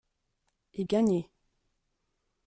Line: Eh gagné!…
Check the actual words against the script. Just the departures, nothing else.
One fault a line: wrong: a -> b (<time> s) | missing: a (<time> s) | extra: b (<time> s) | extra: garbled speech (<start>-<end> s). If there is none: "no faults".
no faults